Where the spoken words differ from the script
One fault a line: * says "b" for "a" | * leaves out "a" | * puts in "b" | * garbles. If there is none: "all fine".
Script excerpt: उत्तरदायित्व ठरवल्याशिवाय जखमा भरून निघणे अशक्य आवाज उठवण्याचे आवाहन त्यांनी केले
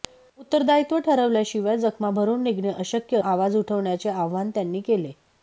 all fine